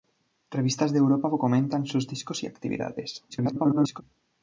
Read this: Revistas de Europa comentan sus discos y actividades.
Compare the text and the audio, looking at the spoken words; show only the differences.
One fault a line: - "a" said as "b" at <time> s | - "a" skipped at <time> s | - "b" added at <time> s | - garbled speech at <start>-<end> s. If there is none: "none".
- garbled speech at 3.3-4.0 s